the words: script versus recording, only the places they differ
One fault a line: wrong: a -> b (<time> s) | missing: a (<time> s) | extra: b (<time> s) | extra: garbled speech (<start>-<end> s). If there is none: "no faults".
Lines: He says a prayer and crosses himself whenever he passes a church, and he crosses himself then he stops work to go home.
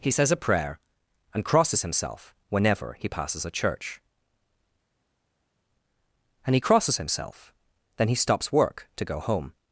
no faults